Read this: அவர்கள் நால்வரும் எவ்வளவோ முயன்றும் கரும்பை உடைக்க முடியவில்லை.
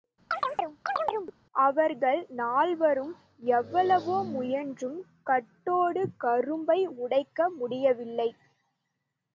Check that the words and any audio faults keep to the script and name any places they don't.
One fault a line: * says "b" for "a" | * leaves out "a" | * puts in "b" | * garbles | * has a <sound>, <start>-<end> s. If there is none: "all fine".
* has a chirp, 0.3-1.4 s
* puts in "கட்டோடு"